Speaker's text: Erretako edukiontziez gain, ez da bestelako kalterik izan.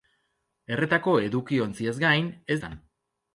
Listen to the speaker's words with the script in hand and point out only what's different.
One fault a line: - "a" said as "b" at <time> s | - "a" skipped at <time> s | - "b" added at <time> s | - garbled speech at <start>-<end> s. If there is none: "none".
- "da bestelako kalterik" skipped at 2.6 s